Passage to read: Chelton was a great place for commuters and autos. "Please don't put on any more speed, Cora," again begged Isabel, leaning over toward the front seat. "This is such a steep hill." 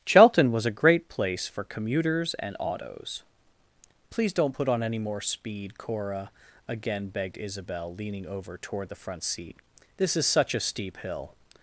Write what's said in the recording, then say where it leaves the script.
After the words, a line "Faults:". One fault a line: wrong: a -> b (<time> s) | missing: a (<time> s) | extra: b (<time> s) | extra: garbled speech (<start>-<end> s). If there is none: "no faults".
Chelton was a great place for commuters and autos. "Please don't put on any more speed, Cora," again begged Isabel, leaning over toward the front seat. "This is such a steep hill."
Faults:
no faults